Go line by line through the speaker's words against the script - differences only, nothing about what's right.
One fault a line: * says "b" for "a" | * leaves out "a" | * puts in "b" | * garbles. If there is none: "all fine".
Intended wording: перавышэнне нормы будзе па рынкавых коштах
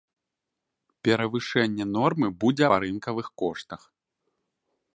all fine